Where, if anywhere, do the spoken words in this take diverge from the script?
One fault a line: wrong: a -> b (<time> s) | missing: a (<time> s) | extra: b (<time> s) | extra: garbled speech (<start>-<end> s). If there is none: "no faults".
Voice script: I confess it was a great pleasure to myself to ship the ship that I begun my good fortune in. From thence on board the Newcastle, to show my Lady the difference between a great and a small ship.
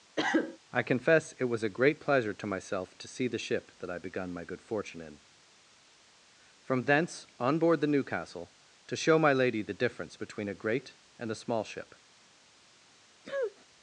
wrong: ship -> see (3.1 s)